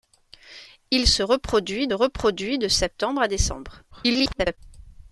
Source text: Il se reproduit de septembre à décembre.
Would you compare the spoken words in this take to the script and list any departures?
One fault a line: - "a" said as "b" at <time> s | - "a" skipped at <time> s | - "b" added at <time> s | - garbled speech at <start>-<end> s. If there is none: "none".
- "reproduit" added at 1.9 s
- garbled speech at 3.9-4.6 s